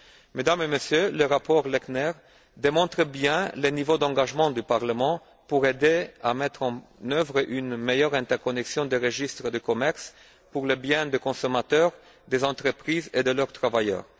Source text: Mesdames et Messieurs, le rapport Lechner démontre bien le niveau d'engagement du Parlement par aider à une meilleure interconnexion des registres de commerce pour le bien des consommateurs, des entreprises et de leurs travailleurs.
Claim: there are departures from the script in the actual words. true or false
true